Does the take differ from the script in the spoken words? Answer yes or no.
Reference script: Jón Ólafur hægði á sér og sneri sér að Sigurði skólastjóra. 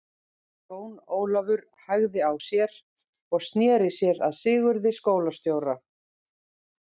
no